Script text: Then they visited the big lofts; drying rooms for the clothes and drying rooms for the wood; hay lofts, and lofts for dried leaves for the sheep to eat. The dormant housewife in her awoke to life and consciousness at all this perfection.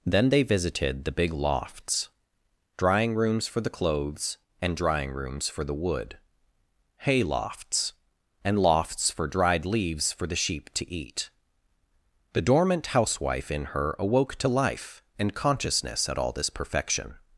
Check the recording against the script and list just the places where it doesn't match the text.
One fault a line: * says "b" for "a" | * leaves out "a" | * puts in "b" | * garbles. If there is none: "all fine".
all fine